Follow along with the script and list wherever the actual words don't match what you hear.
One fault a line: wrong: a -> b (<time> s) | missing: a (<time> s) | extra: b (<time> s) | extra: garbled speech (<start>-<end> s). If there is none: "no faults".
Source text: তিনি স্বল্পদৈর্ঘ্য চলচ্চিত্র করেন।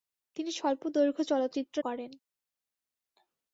no faults